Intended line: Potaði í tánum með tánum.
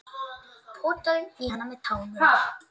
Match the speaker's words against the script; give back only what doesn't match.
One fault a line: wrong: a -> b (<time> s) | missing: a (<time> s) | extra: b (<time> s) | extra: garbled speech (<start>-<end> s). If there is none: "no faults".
wrong: tánum -> hann (1.5 s)